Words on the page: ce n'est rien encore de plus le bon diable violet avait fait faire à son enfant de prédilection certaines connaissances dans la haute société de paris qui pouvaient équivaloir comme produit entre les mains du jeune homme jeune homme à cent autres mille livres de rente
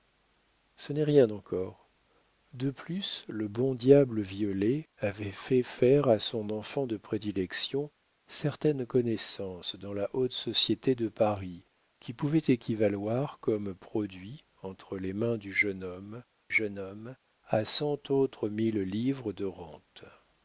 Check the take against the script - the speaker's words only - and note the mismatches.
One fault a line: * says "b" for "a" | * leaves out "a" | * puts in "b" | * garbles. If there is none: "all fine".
all fine